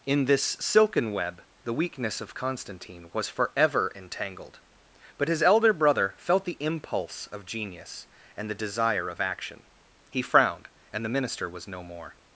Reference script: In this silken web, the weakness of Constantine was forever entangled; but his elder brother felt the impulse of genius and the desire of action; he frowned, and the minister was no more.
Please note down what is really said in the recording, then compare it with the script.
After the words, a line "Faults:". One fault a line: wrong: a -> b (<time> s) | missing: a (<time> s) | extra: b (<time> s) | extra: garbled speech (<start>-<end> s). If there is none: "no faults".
In this silken web, the weakness of Constantine was forever entangled; but his elder brother felt the impulse of genius and the desire of action; he frowned, and the minister was no more.
Faults:
no faults